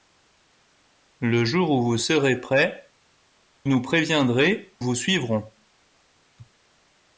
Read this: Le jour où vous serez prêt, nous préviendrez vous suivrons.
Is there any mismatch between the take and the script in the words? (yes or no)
no